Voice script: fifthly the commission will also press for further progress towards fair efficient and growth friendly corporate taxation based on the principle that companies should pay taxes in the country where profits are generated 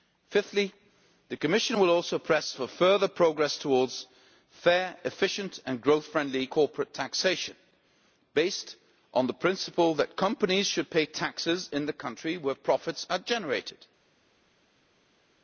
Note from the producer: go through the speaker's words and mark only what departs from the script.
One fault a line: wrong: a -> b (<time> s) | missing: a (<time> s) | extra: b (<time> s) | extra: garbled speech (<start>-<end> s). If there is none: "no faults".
no faults